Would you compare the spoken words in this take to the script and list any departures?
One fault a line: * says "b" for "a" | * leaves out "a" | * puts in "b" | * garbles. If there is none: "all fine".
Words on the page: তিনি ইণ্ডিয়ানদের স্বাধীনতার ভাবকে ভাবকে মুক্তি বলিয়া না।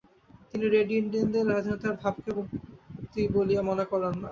* puts in "রেড"
* leaves out "ভাবকে"
* puts in "মনে করেন"